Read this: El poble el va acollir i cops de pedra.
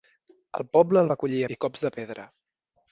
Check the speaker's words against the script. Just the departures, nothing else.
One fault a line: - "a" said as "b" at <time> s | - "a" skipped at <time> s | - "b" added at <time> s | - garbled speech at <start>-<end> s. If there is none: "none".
none